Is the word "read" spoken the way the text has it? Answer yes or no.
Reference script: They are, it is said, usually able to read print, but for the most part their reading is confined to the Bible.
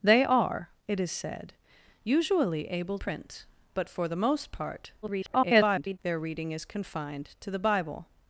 no